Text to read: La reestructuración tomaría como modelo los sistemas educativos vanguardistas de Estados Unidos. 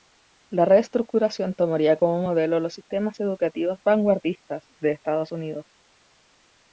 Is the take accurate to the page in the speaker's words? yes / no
yes